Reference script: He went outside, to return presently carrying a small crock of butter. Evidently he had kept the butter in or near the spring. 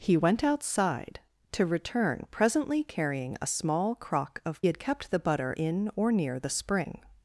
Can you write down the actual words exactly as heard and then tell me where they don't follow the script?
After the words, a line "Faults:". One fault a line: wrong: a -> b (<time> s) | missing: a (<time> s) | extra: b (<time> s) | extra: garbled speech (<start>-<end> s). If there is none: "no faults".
He went outside, to return presently carrying a small crock of had kept the butter in or near the spring.
Faults:
missing: butter Evidently he (4.7 s)